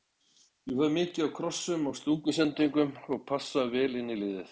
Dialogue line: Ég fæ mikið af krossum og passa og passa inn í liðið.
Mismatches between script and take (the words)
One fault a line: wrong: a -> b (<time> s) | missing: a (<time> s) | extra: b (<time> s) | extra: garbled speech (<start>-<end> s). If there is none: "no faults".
wrong: passa -> stungusendingum (2.0 s)
extra: vel (3.7 s)